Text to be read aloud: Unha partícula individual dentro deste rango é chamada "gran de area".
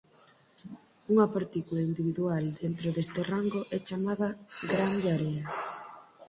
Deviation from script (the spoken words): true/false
false